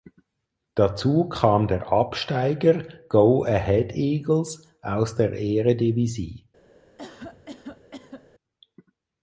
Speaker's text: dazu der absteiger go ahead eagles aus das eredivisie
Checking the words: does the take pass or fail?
fail